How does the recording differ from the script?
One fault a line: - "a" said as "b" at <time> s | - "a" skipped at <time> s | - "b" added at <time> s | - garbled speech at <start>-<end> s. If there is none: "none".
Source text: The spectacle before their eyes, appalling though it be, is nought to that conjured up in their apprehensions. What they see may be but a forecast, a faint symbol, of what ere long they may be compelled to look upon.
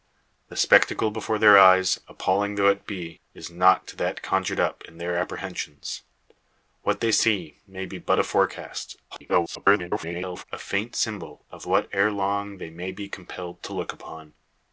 - garbled speech at 9.1-10.4 s